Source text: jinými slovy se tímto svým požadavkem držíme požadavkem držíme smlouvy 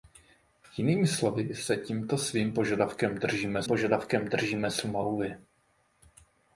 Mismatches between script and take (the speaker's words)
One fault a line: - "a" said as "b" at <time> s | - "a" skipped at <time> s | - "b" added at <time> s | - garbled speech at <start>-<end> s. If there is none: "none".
none